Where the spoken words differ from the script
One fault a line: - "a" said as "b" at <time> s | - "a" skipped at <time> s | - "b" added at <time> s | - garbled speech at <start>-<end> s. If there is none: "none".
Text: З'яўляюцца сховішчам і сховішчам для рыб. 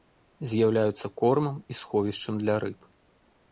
- "сховішчам" said as "кормам" at 1.2 s